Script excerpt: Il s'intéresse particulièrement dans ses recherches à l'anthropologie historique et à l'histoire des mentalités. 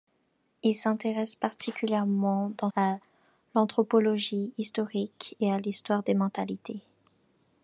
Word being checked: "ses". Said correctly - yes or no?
no